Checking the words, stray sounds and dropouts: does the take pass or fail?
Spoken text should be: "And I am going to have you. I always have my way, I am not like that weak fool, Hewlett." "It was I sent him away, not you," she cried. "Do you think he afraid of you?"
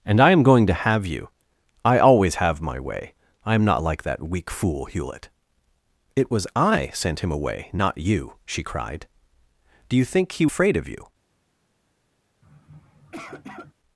fail